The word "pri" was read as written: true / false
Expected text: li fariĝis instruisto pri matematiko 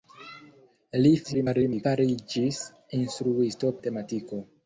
false